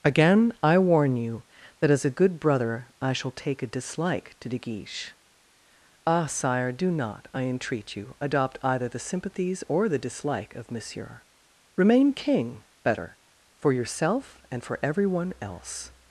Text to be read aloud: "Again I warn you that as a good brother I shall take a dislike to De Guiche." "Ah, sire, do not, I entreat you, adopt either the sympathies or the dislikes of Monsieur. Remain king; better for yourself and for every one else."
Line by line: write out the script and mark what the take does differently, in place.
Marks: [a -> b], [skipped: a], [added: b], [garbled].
"Again I warn you that as a good brother I shall take a dislike to De Guiche." "Ah, sire, do not, I entreat you, adopt either the sympathies or the [dislikes -> dislike] of Monsieur. Remain king; better for yourself and for every one else."